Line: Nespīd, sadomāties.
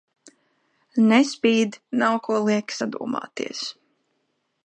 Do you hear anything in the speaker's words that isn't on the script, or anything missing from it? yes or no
yes